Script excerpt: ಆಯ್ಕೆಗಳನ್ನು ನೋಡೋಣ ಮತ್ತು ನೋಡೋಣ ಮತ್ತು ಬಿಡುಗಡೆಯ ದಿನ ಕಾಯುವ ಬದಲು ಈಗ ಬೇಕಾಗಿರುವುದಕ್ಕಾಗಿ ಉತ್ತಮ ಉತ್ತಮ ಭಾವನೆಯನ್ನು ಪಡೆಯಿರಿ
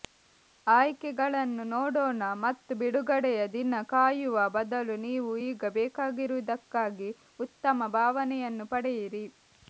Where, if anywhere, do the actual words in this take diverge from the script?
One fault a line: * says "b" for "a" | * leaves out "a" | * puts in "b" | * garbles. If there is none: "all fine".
* leaves out "ನೋಡೋಣ ಮತ್ತು"
* puts in "ನೀವು"
* leaves out "ಉತ್ತಮ"